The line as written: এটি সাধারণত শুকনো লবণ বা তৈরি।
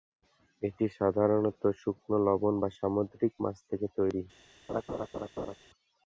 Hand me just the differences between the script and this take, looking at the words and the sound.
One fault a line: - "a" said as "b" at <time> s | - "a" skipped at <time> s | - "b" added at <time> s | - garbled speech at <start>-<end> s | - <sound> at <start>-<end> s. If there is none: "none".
- "সামুদ্রিক মাছ থেকে" added at 2.8 s
- laugh at 4.7-5.6 s